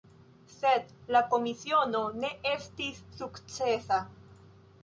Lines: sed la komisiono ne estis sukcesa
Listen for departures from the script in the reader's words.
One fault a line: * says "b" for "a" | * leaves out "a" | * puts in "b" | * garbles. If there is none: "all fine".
all fine